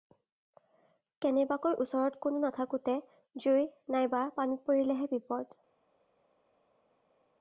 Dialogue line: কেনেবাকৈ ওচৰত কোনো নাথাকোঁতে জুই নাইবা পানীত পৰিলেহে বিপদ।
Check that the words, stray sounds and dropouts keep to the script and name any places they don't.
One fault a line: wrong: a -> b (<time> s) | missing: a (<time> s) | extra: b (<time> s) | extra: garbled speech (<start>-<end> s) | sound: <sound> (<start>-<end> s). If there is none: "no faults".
no faults